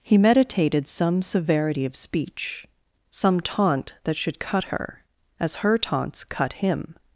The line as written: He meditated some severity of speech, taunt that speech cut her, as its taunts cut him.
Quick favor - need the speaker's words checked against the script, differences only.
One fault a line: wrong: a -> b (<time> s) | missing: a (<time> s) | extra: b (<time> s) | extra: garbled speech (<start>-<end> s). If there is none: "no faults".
extra: some (3.1 s)
wrong: speech -> should (4.2 s)
wrong: its -> her (5.5 s)